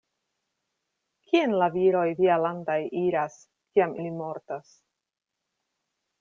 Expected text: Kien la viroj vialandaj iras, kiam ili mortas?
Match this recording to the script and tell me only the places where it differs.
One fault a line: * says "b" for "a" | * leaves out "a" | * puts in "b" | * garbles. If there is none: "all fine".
all fine